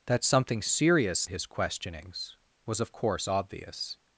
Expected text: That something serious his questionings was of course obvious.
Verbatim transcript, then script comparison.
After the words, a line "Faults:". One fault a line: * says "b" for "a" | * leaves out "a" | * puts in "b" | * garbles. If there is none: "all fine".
That something serious his questionings was of course obvious.
Faults:
all fine